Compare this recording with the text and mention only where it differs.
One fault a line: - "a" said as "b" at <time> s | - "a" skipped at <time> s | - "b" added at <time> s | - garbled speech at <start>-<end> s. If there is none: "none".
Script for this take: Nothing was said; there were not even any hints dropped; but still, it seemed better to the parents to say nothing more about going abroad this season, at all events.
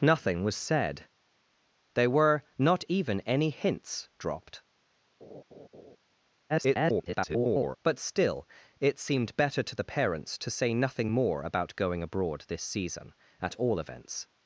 - garbled speech at 6.5-7.8 s